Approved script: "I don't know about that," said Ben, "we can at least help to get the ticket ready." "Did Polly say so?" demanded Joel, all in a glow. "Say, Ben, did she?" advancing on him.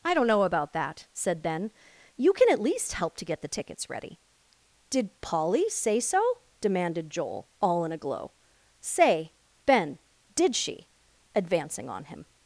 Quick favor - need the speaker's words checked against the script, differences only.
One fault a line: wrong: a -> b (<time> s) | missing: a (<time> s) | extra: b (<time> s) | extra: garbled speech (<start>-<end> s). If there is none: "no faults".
wrong: we -> you (2.2 s)
wrong: ticket -> tickets (3.5 s)